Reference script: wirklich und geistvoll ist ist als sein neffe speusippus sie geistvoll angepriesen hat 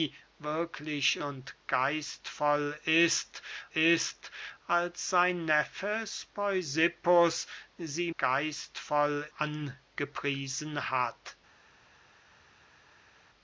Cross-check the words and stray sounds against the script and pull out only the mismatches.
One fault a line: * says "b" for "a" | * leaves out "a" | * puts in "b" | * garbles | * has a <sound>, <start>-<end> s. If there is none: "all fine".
all fine